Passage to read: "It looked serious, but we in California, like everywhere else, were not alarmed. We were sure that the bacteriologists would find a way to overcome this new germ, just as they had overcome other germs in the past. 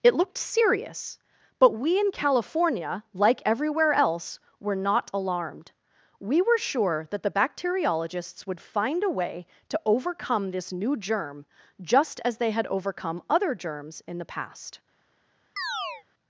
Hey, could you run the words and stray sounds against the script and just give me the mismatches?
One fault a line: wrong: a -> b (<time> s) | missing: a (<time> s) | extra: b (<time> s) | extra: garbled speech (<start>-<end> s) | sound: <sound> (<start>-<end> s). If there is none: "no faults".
sound: chirp (15.6-16.0 s)